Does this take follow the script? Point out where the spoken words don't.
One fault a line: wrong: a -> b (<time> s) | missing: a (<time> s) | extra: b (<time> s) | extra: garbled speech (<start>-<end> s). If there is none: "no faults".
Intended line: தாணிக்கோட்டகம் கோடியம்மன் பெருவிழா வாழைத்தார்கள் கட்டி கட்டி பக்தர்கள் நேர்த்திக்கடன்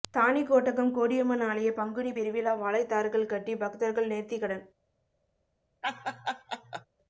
extra: ஆலய பங்குனி (1.5 s)
missing: கட்டி (3.5 s)